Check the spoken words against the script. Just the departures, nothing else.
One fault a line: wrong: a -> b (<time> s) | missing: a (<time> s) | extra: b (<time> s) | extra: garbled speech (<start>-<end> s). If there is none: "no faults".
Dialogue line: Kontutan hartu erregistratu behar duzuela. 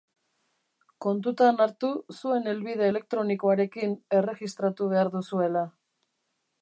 extra: zuen helbide elektronikoarekin (2.1 s)